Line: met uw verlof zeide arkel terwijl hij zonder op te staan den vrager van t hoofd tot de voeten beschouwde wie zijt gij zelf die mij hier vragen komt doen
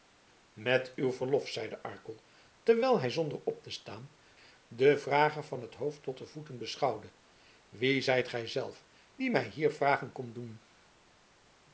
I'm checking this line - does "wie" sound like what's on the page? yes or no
yes